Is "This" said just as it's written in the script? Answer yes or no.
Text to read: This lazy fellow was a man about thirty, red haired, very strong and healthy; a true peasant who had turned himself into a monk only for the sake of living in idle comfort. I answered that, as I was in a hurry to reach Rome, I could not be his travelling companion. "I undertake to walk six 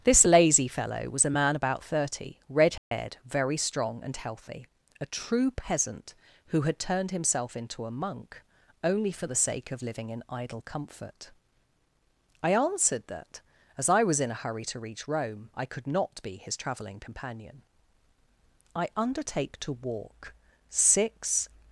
yes